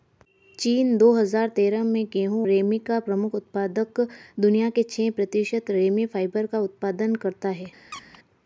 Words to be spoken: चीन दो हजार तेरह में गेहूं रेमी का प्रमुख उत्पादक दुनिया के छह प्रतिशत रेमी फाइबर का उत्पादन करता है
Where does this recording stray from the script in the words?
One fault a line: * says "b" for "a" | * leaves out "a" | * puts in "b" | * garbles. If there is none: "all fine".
all fine